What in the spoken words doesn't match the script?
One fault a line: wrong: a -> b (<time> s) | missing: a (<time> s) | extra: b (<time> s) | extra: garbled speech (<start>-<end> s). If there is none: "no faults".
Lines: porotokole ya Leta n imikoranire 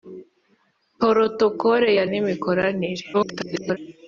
missing: Leta (2.0 s)
extra: garbled speech (3.1-3.8 s)